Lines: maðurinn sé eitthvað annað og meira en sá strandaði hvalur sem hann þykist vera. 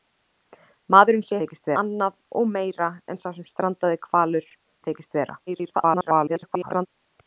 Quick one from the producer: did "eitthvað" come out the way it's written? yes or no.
no